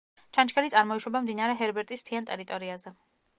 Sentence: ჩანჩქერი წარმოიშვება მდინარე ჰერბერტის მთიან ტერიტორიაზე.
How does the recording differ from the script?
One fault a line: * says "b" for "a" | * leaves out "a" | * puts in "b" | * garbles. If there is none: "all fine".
all fine